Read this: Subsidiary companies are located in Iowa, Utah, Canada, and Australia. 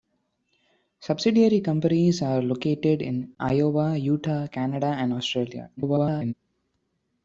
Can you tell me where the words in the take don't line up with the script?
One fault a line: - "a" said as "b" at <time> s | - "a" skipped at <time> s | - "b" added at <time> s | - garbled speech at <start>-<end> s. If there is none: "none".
- garbled speech at 5.8-6.3 s